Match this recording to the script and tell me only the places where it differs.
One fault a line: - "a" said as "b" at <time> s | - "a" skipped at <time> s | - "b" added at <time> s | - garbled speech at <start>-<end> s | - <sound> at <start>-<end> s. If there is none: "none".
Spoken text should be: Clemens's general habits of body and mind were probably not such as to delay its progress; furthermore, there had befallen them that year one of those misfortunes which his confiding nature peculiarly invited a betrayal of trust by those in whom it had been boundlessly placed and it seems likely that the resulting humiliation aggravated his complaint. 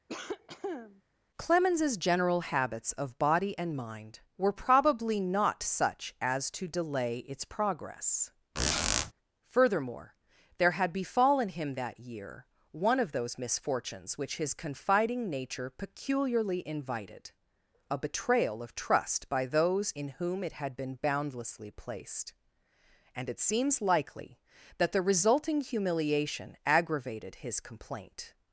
- cough at 0.1-1.0 s
- squeak at 8.6-9.1 s
- "them" said as "him" at 11.5 s